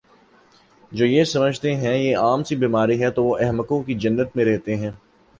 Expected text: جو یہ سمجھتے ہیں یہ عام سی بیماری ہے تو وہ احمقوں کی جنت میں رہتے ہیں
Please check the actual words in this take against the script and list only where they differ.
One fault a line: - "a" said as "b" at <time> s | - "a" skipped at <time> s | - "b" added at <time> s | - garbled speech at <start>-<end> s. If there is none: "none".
none